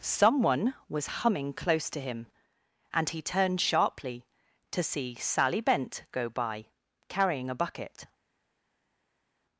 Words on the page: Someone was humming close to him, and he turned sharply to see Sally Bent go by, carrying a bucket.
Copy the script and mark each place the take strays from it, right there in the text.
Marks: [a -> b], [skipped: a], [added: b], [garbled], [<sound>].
Someone was humming close to him, and he turned sharply to see Sally Bent go by, carrying a bucket.